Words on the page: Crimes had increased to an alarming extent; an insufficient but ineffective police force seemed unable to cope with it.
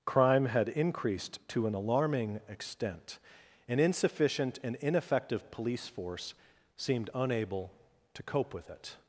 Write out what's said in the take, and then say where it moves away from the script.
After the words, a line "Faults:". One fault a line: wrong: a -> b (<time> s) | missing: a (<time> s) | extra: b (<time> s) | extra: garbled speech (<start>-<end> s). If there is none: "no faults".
Crime had increased to an alarming extent; an insufficient and ineffective police force seemed unable to cope with it.
Faults:
wrong: Crimes -> Crime (0.1 s)
wrong: but -> and (4.6 s)